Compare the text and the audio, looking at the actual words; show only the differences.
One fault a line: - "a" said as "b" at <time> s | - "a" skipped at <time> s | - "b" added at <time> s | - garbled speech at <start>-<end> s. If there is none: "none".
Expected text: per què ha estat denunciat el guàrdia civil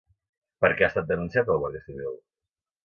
none